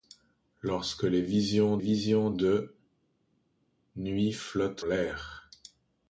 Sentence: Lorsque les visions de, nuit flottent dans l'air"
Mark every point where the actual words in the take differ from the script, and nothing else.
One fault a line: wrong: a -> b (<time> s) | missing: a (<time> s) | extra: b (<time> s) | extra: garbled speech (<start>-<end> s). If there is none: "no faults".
extra: visions (1.8 s)
missing: dans (4.9 s)